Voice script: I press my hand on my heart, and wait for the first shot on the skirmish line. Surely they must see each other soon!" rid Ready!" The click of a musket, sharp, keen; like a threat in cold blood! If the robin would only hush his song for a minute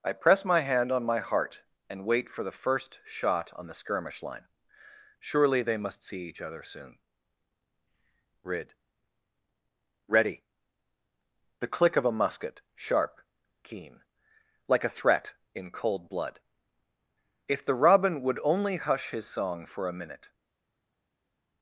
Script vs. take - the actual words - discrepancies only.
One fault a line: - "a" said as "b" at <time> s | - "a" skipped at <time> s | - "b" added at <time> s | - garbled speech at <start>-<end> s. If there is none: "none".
none